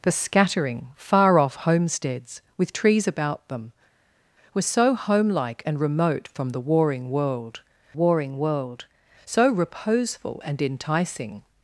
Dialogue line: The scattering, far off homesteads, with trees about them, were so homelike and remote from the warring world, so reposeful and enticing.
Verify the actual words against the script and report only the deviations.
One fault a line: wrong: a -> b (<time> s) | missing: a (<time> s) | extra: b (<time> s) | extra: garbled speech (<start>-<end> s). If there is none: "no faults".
extra: warring world (7.9 s)